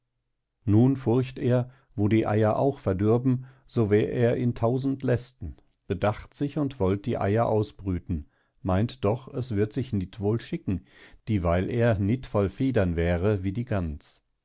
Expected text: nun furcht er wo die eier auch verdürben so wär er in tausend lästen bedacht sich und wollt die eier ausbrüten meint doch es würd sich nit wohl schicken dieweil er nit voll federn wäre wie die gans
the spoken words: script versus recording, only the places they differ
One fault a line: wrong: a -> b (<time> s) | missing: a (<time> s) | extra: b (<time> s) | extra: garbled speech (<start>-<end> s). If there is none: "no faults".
no faults